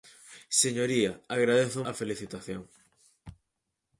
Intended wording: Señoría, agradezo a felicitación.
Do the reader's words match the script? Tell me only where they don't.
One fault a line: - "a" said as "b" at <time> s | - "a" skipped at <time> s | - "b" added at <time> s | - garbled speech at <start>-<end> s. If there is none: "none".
none